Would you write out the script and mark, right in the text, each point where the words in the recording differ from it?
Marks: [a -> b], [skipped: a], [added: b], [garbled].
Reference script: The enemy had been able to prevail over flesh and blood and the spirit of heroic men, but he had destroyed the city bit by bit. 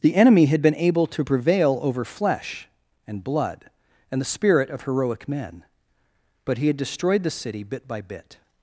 The enemy had been able to prevail over flesh and blood and the spirit of heroic men, but he had destroyed the city bit by bit.